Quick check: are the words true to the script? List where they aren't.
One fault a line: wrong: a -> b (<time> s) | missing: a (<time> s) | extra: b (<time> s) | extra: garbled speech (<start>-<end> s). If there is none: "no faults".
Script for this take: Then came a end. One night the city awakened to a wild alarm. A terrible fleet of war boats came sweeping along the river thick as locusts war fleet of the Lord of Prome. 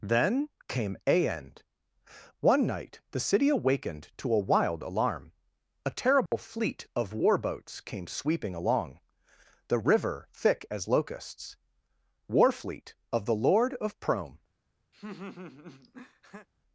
no faults